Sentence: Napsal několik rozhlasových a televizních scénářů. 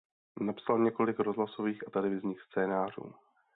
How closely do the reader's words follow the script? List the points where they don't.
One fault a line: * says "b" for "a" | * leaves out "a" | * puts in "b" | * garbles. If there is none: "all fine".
all fine